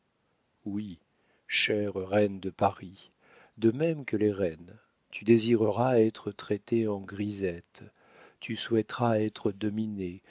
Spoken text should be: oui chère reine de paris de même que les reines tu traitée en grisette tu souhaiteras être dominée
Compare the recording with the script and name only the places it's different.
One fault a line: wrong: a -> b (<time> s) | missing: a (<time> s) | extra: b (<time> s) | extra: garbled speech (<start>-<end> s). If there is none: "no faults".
extra: désireras être (5.2 s)